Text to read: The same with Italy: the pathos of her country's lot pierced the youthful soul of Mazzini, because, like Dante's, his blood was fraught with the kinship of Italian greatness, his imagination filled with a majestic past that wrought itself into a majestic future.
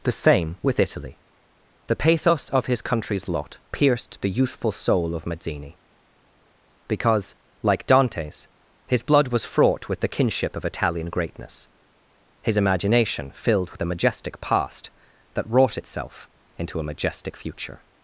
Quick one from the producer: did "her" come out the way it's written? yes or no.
no